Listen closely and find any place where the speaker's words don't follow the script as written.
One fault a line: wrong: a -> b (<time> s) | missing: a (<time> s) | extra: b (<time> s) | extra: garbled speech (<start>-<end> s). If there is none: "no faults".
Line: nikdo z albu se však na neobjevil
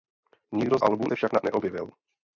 no faults